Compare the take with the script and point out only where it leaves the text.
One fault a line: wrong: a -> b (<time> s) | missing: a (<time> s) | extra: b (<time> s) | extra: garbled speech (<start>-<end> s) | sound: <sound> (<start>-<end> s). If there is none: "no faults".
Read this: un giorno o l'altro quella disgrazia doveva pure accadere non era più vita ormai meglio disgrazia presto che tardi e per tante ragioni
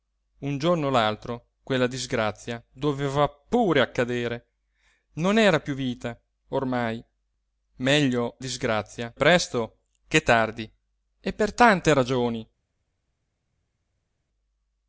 no faults